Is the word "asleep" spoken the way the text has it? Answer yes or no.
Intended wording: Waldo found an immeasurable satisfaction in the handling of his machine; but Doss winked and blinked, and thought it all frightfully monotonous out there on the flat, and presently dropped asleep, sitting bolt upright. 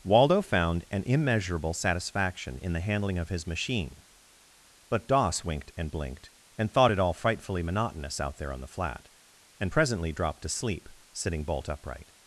no